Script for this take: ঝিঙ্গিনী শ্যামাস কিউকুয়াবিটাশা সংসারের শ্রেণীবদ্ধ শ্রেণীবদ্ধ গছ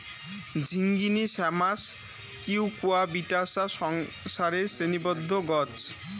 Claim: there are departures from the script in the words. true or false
true